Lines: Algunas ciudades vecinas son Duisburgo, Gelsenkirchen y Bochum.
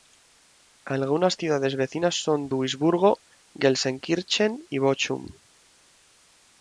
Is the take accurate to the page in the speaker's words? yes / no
yes